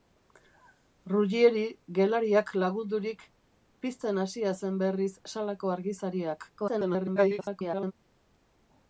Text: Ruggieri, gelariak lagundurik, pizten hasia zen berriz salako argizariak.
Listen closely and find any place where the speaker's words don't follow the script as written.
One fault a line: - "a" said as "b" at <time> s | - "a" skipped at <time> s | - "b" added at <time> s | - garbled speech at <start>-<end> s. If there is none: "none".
- garbled speech at 6.6-7.9 s